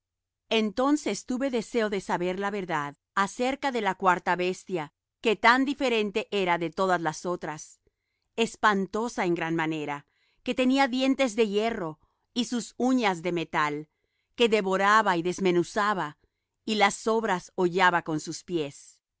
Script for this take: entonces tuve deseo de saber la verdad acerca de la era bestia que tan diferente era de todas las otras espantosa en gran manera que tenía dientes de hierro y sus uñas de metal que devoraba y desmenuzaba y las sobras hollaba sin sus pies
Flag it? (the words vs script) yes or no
yes